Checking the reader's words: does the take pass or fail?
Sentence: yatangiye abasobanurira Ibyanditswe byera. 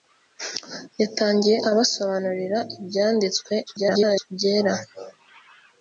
fail